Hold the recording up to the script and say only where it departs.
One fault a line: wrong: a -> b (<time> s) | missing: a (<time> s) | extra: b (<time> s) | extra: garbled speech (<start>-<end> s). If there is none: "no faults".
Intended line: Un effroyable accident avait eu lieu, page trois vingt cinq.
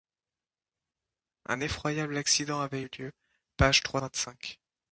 no faults